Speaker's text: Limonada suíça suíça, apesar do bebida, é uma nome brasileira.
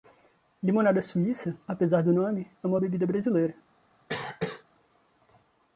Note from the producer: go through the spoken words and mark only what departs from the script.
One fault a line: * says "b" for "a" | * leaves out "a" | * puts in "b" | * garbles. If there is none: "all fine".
* leaves out "suíça"
* says "nome" for "bebida"
* says "bebida" for "nome"